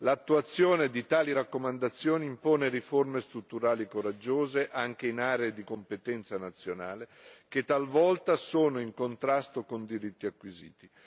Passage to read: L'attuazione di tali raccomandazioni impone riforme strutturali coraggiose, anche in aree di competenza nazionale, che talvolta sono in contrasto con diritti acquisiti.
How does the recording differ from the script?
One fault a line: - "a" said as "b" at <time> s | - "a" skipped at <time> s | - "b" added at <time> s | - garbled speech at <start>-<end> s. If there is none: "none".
none